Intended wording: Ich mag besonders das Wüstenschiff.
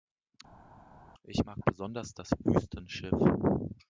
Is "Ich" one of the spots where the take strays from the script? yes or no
no